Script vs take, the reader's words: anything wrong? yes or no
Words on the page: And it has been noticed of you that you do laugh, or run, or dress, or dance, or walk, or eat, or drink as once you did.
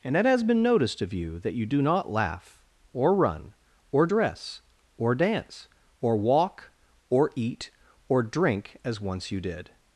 yes